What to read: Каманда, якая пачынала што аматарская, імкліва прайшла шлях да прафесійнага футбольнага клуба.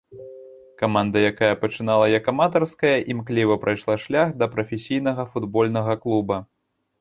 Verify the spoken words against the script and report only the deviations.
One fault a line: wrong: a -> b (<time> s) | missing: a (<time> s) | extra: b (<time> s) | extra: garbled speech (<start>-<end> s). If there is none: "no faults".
wrong: што -> як (2.1 s)